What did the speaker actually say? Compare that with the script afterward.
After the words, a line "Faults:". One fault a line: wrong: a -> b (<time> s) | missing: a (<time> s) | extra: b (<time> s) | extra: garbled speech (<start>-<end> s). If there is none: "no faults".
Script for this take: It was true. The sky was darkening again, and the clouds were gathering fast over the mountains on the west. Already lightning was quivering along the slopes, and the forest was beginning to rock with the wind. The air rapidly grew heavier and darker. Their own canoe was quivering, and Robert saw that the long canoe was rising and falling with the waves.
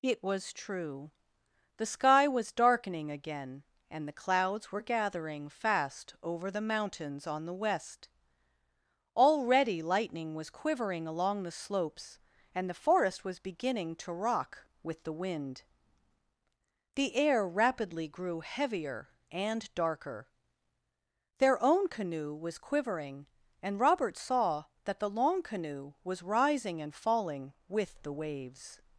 It was true. The sky was darkening again, and the clouds were gathering fast over the mountains on the west. Already lightning was quivering along the slopes, and the forest was beginning to rock with the wind. The air rapidly grew heavier and darker. Their own canoe was quivering, and Robert saw that the long canoe was rising and falling with the waves.
Faults:
no faults